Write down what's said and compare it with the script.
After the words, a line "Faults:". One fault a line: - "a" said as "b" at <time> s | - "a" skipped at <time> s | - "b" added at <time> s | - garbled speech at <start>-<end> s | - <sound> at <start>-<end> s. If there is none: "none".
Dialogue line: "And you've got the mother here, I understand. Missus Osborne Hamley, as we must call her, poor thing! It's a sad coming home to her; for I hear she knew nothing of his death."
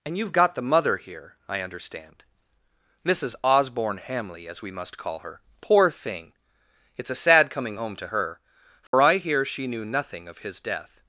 "And you've got the mother here, I understand. Missus Osborne Hamley, as we must call her, poor thing! It's a sad coming home to her; for I hear she knew nothing of his death."
Faults:
- dropout at 8.9-8.9 s